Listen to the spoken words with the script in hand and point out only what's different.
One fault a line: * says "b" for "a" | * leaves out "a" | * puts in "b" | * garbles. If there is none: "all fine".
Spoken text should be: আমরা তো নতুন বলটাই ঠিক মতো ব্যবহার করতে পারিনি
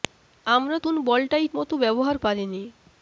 * leaves out "তো"
* leaves out "ঠিক"
* leaves out "করতে"